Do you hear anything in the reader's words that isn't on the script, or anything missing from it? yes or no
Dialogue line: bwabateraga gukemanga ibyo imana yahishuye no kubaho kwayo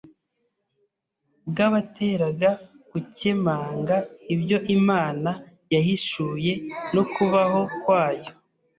no